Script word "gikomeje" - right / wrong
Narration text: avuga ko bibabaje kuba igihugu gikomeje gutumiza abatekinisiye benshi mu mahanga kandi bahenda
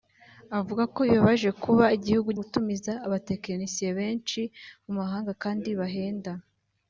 wrong